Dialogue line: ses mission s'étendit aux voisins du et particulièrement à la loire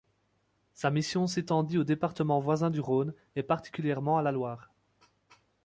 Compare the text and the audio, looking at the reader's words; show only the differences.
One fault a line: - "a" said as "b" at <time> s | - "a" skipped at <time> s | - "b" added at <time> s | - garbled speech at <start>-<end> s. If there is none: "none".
- "ses" said as "sa" at 0.7 s
- "départements" added at 1.8 s
- "rhône" added at 2.8 s